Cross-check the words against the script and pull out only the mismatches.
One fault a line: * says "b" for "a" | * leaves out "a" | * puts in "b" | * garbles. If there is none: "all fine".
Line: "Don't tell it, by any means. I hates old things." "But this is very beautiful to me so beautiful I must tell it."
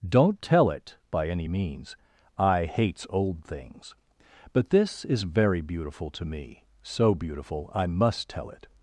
all fine